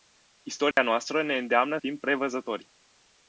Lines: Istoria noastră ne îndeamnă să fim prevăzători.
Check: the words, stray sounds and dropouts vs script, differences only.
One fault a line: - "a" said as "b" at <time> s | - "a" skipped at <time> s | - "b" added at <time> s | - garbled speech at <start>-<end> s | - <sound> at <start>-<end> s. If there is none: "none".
- dropout at 0.7-0.8 s
- "să" skipped at 1.8 s